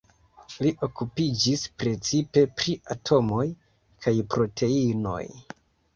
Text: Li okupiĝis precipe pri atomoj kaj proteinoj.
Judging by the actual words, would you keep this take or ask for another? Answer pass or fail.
pass